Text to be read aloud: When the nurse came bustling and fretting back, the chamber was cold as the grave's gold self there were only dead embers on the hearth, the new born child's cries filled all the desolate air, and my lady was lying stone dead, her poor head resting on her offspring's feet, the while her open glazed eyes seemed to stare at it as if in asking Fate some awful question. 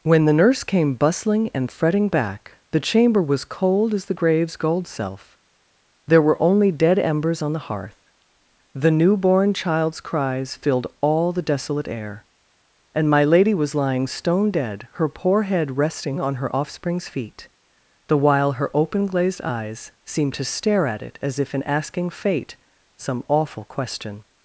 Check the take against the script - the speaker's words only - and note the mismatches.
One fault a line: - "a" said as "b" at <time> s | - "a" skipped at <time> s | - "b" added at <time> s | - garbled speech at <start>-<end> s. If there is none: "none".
none